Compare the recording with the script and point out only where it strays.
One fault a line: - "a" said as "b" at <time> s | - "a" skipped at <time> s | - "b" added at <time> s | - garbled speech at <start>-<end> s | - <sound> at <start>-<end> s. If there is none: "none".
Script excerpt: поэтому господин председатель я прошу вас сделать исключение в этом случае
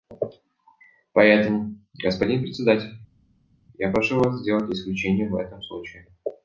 none